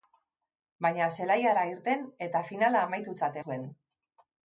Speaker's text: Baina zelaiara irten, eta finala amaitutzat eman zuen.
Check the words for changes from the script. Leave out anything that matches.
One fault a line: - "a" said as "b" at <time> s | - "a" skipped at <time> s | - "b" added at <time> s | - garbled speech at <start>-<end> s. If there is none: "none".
- "eman" skipped at 3.4 s